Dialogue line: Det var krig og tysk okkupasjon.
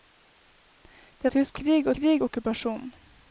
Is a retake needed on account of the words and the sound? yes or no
yes